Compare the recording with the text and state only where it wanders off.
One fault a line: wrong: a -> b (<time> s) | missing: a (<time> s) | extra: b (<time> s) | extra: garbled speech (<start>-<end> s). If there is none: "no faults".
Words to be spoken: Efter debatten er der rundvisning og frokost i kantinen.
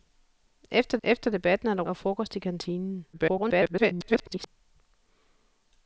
extra: efter (1.0 s)
missing: rundvisning (1.8 s)
extra: garbled speech (3.1-4.5 s)